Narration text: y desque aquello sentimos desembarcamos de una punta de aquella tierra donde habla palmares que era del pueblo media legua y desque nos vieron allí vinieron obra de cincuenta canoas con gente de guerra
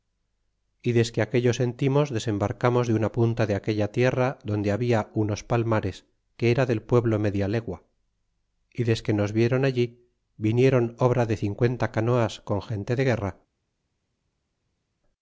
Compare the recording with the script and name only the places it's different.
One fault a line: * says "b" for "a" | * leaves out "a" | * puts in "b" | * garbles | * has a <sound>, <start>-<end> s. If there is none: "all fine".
* puts in "unos"